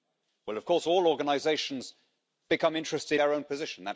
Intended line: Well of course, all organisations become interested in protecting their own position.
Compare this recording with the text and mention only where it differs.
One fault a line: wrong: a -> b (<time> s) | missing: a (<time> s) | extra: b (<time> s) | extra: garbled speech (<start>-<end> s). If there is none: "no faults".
missing: in protecting (3.2 s)